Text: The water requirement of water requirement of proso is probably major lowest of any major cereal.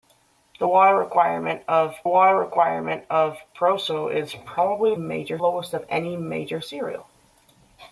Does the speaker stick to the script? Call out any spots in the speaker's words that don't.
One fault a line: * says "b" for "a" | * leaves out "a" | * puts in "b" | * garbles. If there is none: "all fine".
all fine